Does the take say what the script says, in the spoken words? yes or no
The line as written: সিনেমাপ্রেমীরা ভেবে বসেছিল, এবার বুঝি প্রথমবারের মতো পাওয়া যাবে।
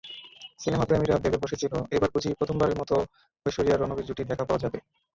no